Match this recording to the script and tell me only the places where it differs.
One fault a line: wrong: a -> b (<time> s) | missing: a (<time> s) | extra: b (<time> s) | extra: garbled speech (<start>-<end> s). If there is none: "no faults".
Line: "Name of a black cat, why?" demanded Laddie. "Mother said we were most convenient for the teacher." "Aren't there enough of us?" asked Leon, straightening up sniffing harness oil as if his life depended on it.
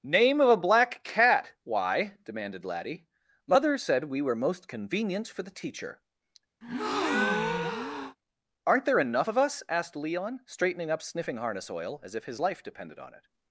no faults